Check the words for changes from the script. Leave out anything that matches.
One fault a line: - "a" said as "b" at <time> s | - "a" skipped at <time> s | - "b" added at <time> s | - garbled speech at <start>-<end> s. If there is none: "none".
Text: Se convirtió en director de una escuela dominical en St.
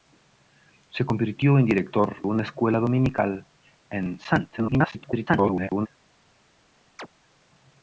- "de" skipped at 2.2 s
- garbled speech at 4.6-5.9 s